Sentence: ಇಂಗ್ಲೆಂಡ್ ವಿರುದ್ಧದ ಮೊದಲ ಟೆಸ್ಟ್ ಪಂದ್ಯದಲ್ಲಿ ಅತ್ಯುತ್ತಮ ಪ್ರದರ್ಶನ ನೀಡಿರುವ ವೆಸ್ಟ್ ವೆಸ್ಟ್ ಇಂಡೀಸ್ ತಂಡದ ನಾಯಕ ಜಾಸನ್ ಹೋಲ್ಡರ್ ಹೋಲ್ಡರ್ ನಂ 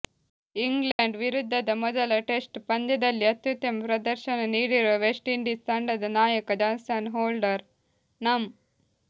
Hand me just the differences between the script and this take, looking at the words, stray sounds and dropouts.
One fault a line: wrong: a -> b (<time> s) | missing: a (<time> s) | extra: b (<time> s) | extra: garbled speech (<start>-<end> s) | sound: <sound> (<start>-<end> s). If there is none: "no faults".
sound: dropout (0.9-1.0 s)
missing: ವೆಸ್ಟ್ (5.3 s)
missing: ಹೋಲ್ಡರ್ (7.6 s)